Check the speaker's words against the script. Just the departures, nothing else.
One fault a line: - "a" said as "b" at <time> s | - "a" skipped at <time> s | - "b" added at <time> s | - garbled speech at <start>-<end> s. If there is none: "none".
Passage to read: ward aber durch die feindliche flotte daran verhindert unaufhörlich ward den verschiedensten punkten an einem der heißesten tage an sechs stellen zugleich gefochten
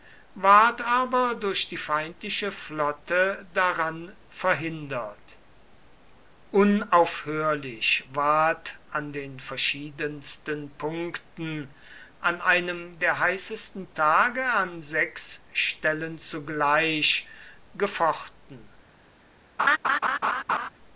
- "an" added at 8.9 s